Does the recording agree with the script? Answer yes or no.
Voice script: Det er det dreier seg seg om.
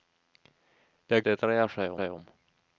yes